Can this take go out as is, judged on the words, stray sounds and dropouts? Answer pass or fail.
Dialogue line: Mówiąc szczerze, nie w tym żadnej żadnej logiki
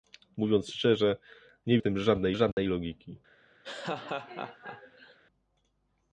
fail